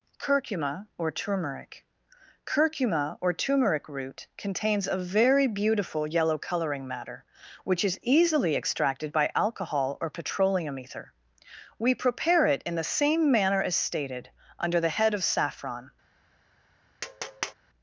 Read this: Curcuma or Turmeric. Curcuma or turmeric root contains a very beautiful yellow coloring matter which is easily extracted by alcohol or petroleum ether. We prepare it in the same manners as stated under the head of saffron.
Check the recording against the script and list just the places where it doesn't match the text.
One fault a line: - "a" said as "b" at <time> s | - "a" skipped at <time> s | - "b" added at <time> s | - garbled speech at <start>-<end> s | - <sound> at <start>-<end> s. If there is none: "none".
- "manners" said as "manner" at 13.3 s
- tap at 17.0-17.5 s